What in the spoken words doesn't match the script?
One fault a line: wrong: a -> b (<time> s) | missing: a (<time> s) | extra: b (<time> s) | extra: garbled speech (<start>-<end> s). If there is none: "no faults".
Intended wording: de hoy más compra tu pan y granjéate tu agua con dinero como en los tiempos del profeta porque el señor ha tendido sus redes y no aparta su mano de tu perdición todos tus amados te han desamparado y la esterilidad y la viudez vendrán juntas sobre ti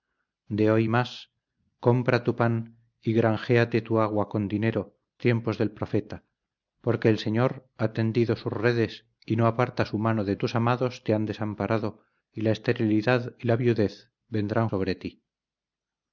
missing: como en los (4.9 s)
missing: tu perdición todos (10.4 s)
missing: juntas (14.7 s)